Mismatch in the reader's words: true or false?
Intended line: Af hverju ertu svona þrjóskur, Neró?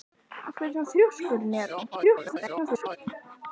true